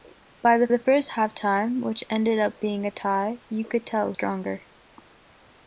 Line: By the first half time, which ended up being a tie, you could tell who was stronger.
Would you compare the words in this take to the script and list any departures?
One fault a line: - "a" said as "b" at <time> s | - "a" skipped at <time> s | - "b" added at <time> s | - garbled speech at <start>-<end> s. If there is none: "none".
- "the" added at 0.7 s
- "who was" skipped at 4.1 s